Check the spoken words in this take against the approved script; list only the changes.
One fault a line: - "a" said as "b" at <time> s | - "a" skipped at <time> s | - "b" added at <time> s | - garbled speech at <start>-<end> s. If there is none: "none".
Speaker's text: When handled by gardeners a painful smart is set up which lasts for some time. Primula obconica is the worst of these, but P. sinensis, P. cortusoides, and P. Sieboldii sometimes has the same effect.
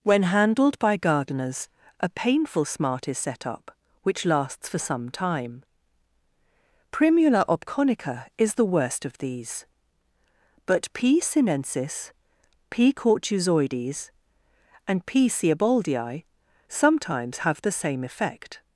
- "has" said as "have" at 17.4 s